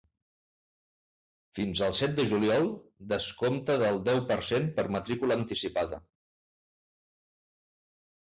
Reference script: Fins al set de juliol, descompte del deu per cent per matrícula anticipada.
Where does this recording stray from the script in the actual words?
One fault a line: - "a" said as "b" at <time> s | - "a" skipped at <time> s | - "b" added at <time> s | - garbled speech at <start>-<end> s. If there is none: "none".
none